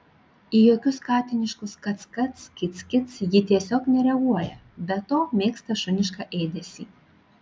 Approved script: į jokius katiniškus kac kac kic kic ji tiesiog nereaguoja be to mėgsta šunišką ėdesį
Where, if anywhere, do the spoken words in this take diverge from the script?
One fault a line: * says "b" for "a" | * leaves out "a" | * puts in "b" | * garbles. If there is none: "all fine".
all fine